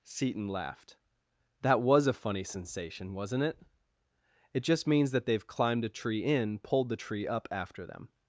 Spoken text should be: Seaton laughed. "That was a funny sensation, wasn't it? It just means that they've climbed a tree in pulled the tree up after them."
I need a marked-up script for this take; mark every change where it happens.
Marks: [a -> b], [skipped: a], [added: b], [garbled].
Seaton laughed. "That was a funny sensation, wasn't it? It just means that they've climbed a tree in pulled the tree up after them."